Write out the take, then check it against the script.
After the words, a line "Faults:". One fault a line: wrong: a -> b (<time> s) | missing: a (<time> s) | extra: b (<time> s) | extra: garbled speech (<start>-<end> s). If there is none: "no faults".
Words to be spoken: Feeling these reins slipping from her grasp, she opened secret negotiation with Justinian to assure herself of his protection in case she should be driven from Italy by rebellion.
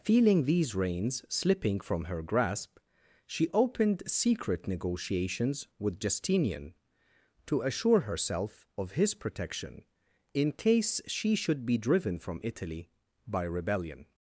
Feeling these reins slipping from her grasp, she opened secret negotiations with Justinian to assure herself of his protection in case she should be driven from Italy by rebellion.
Faults:
wrong: negotiation -> negotiations (4.7 s)